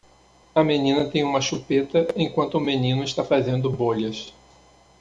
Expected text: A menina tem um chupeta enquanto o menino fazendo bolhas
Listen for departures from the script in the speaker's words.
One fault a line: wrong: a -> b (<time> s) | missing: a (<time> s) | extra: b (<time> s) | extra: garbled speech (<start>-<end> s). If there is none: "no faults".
wrong: um -> uma (1.2 s)
extra: está (3.0 s)